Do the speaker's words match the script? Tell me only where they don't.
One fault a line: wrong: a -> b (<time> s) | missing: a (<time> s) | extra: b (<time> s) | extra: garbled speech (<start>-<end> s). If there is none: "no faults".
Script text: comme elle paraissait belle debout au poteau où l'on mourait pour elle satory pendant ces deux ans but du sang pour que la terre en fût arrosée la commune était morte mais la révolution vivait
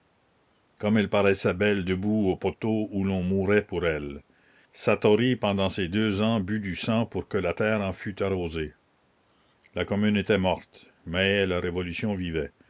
no faults